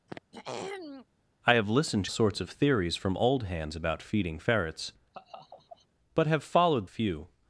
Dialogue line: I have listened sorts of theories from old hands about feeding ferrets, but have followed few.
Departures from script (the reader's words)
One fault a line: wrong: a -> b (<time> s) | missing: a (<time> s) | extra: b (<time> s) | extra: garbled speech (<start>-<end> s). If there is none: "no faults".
no faults